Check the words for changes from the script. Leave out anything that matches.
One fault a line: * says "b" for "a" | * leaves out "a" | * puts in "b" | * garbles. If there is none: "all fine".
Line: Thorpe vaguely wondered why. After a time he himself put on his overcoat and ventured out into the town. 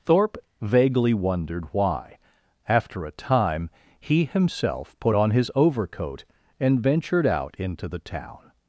all fine